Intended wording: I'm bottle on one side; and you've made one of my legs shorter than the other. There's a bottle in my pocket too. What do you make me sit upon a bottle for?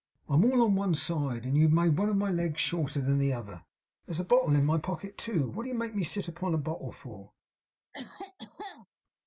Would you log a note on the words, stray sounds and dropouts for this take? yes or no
yes